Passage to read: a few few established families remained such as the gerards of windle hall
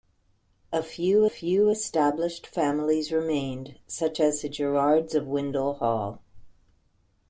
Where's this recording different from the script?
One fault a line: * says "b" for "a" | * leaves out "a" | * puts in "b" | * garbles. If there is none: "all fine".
all fine